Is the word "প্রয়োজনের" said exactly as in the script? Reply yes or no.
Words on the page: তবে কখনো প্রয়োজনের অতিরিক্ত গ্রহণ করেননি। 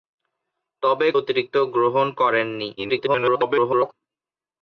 no